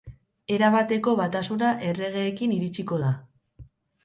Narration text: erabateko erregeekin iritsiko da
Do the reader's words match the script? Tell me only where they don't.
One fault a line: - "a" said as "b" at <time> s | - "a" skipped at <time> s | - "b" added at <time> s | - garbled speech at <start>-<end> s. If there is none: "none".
- "batasuna" added at 1.2 s